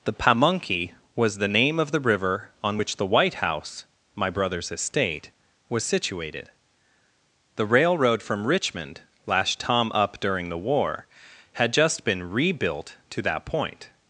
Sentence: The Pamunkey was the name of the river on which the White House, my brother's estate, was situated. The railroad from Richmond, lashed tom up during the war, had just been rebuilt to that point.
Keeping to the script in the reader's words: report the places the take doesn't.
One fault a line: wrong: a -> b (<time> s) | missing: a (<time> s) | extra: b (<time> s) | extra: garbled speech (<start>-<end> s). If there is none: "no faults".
no faults